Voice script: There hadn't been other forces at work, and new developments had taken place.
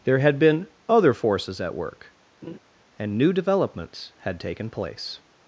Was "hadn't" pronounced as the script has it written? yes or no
no